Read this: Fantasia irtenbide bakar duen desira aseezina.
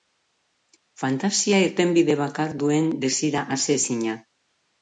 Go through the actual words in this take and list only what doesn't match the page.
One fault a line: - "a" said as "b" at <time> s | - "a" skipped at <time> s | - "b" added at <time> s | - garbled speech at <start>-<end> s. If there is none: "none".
none